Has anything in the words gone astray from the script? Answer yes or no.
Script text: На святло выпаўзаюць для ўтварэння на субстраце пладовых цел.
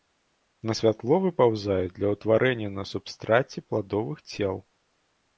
no